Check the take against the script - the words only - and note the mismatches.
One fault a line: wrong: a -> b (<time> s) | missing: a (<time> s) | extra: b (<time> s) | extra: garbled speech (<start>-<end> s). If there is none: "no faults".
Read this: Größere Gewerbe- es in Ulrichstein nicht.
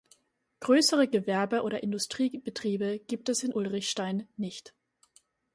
extra: oder Industriebetriebe gibt (1.6 s)